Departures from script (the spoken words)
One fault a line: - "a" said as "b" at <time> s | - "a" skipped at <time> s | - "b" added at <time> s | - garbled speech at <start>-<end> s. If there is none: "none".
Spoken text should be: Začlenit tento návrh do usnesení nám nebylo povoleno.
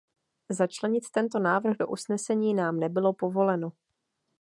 none